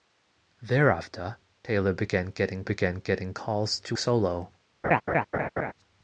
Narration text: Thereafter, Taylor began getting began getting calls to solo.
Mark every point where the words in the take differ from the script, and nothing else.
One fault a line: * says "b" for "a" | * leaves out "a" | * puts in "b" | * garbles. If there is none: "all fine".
all fine